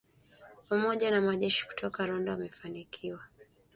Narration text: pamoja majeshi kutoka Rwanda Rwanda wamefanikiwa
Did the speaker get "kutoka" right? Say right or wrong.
right